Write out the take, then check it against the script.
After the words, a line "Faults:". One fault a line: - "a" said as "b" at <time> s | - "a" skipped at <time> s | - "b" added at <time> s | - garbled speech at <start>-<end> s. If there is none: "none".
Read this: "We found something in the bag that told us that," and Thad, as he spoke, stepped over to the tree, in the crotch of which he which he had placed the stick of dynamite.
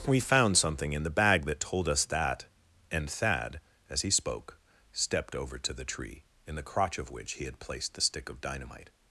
"We found something in the bag that told us that," and Thad, as he spoke, stepped over to the tree, in the crotch of which he had placed the stick of dynamite.
Faults:
- "which he" skipped at 7.5 s